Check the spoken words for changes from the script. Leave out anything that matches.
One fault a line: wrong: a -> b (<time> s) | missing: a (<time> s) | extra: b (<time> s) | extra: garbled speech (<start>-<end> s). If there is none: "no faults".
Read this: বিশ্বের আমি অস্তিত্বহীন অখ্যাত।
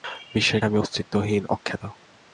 no faults